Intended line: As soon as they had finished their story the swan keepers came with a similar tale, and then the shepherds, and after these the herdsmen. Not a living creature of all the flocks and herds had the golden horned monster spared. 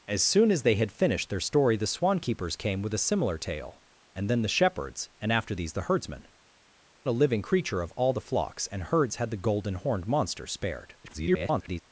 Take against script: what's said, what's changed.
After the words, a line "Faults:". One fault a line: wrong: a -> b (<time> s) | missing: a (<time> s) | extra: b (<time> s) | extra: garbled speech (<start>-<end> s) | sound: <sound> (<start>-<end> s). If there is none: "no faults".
As soon as they had finished their story the swan keepers came with a similar tale, and then the shepherds, and after these the herdsmen. A living creature of all the flocks and herds had the golden horned monster spared. [garbled]
Faults:
missing: Not (6.3 s)
extra: garbled speech (11.0-11.8 s)